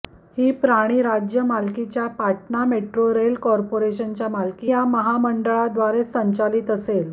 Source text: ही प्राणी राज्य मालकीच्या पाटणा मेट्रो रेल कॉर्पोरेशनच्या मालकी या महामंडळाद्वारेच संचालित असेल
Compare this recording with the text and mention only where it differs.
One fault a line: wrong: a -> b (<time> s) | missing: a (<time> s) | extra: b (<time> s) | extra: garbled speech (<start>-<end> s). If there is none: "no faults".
no faults